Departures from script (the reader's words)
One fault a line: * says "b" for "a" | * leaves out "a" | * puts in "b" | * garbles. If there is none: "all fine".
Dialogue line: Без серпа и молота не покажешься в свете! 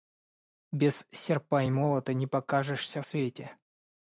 * leaves out "в"